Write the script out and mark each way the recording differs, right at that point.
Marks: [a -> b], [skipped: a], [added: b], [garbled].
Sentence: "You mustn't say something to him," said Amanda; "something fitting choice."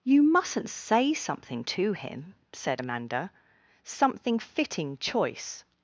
"You mustn't say something to him," said Amanda; "something fitting choice."